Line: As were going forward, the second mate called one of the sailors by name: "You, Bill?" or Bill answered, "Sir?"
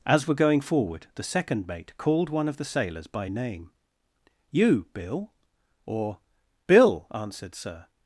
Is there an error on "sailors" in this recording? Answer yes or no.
no